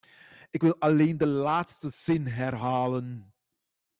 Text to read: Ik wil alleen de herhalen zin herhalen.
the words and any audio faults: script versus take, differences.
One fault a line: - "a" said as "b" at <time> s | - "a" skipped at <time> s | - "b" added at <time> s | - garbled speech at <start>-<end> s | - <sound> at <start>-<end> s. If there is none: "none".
- "herhalen" said as "laatste" at 1.3 s